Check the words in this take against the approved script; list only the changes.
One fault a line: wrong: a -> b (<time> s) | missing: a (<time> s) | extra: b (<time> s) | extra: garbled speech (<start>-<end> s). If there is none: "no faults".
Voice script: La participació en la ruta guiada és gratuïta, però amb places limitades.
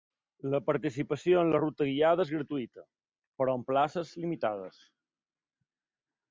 no faults